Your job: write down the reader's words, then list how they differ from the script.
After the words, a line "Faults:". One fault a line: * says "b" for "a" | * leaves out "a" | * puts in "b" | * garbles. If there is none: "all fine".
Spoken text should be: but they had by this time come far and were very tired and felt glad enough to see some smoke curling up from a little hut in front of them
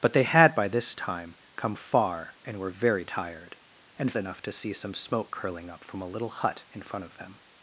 but they had by this time come far and were very tired and enough to see some smoke curling up from a little hut in front of them
Faults:
* leaves out "felt glad"